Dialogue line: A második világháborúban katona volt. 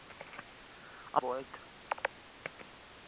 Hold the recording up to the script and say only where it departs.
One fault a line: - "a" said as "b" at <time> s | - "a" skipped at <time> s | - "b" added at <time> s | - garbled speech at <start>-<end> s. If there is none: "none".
- "második világháborúban katona" skipped at 1.2 s